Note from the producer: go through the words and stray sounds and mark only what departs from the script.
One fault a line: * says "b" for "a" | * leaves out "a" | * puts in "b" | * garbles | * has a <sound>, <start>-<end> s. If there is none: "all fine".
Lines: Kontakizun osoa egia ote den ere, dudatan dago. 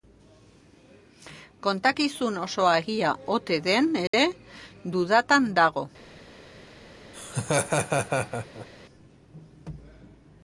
* has a dropout, 4.1-4.1 s
* has a laugh, 7.1-8.7 s